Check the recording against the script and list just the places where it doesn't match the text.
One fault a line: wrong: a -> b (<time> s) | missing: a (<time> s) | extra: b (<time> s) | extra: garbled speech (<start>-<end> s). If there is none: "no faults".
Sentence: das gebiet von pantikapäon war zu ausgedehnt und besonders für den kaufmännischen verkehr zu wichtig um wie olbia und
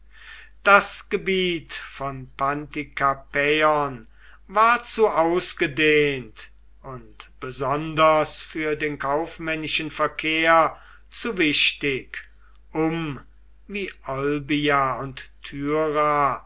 no faults